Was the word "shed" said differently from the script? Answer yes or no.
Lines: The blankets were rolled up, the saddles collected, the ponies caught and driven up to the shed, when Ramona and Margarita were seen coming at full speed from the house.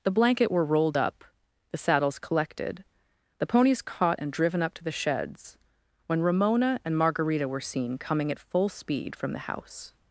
yes